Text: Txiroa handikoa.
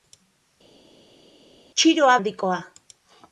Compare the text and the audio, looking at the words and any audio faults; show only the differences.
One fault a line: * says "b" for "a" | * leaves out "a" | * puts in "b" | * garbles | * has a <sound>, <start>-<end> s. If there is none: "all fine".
all fine